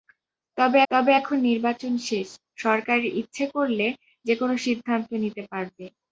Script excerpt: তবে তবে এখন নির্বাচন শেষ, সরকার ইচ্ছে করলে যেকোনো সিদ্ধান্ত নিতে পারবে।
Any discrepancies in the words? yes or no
no